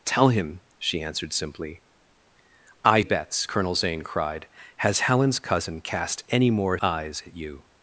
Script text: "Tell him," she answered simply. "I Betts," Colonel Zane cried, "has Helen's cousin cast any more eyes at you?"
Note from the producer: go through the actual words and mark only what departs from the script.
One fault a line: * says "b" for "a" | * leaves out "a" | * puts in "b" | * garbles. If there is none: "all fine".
all fine